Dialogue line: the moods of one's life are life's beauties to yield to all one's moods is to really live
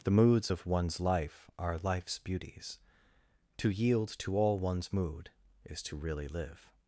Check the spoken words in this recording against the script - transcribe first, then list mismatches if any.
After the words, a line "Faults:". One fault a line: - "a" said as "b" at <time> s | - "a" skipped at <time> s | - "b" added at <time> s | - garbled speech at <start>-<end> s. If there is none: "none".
the moods of one's life are life's beauties to yield to all one's mood is to really live
Faults:
- "moods" said as "mood" at 4.9 s